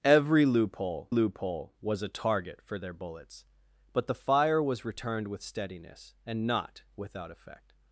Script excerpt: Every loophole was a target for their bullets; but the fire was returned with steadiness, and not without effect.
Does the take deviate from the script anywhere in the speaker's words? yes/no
yes